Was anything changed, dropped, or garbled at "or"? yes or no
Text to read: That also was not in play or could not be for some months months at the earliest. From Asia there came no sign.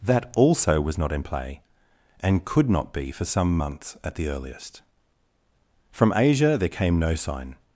yes